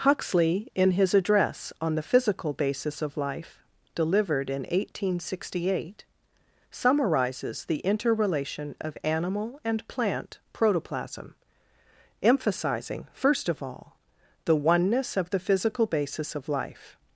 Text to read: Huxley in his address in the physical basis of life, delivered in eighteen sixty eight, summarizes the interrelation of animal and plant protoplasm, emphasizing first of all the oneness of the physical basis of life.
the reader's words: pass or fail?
fail